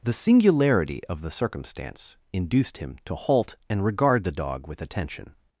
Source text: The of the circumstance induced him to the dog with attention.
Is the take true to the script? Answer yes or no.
no